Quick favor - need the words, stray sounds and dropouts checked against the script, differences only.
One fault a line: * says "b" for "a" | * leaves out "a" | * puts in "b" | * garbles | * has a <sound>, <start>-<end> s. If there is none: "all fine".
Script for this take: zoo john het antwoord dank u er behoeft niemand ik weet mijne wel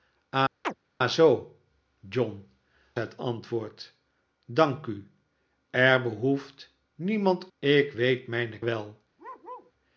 * has a chirp, 0.6-0.8 s
* has a bark, 9.2-9.7 s